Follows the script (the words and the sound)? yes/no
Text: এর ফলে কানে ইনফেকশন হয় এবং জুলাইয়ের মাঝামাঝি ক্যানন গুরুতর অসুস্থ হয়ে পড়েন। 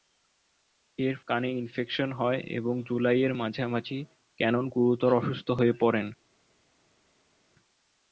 no